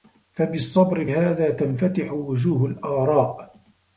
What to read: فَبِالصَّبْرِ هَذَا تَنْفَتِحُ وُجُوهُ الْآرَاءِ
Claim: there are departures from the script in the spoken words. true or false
false